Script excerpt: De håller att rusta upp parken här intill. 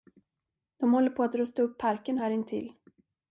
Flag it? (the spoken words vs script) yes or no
yes